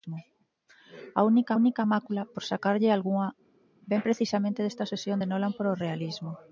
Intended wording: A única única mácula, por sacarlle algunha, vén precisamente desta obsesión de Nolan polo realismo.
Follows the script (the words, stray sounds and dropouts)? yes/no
yes